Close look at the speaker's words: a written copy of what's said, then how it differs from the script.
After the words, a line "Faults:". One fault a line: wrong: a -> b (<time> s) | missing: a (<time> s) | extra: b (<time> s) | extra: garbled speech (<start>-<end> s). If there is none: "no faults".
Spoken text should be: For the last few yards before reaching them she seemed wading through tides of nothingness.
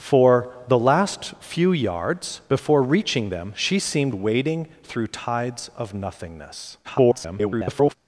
For the last few yards before reaching them she seemed wading through tides of nothingness. [garbled]
Faults:
extra: garbled speech (6.8-7.9 s)